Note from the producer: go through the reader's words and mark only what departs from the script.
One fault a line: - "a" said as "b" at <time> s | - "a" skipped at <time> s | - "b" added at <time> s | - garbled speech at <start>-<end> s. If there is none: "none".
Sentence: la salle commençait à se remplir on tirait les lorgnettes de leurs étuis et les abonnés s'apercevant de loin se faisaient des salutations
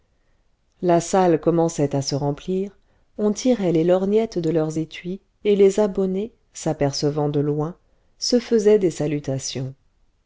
none